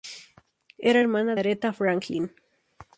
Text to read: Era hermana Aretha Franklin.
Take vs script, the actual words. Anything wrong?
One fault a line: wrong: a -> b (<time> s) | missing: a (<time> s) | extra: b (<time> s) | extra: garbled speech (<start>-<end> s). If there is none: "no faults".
no faults